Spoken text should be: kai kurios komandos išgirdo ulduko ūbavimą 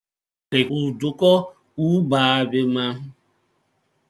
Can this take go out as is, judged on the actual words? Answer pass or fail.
fail